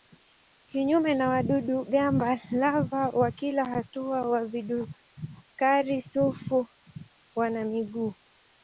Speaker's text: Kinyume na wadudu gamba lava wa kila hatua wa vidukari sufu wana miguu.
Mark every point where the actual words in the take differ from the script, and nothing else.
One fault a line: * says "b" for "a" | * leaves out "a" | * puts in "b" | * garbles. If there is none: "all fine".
all fine